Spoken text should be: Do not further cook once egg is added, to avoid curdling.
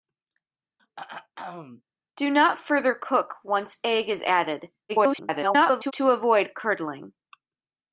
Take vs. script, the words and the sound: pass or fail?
fail